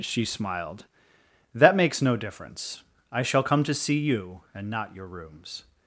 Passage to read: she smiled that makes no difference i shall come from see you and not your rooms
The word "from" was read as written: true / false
false